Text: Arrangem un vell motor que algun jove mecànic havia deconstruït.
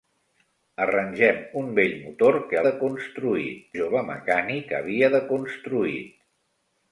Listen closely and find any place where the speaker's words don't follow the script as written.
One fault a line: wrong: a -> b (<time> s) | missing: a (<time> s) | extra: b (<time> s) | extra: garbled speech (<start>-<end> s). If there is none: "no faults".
wrong: algun -> deconstruït (2.7 s)